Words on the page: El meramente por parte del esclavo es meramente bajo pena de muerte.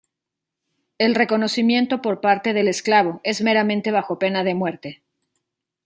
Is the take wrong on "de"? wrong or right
right